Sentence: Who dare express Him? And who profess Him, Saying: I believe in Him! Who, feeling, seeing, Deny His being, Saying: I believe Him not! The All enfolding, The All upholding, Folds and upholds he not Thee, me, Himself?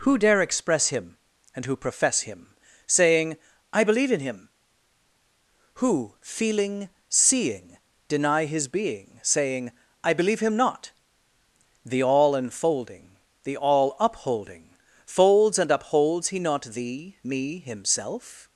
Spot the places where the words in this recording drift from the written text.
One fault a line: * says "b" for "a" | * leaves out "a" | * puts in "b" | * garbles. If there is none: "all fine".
all fine